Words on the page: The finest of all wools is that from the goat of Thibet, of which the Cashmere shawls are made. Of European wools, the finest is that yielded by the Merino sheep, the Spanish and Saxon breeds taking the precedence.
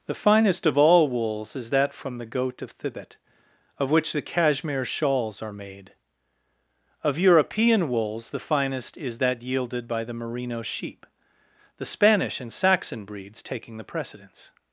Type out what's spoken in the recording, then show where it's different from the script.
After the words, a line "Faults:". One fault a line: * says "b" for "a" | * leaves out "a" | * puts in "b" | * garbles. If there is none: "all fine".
The finest of all wools is that from the goat of Thibet, of which the Cashmere shawls are made. Of European wools, the finest is that yielded by the Merino sheep, the Spanish and Saxon breeds taking the precedence.
Faults:
all fine